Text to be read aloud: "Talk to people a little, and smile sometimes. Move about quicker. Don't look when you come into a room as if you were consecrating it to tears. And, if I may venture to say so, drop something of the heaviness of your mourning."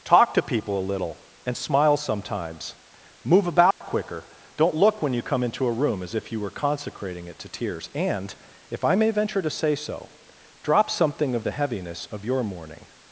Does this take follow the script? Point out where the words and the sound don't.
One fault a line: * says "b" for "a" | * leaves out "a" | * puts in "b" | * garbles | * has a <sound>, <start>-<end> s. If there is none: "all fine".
* has a dropout, 3.7-3.8 s